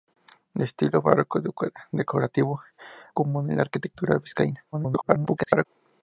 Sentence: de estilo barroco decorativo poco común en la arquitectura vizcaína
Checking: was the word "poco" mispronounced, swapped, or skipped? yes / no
yes